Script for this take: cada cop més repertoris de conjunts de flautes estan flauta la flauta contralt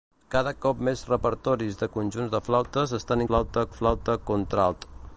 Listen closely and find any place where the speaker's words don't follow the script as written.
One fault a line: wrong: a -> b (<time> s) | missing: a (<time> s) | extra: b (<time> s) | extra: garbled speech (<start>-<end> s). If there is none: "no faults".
no faults